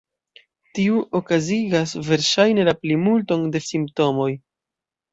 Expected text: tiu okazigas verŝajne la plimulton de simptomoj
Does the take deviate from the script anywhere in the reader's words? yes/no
no